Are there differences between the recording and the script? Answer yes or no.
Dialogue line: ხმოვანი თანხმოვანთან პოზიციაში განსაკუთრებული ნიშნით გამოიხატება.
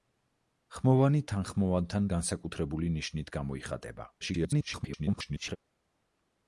yes